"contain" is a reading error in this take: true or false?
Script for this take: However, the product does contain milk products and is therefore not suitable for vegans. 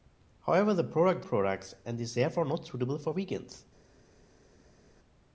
true